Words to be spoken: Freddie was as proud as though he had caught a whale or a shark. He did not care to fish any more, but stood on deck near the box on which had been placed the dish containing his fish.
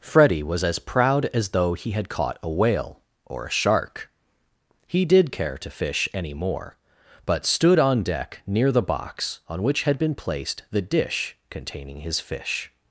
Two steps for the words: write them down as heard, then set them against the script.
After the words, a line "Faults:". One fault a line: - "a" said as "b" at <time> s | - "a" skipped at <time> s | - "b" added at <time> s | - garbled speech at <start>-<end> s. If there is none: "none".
Freddie was as proud as though he had caught a whale or a shark. He did care to fish any more, but stood on deck near the box on which had been placed the dish containing his fish.
Faults:
- "not" skipped at 5.3 s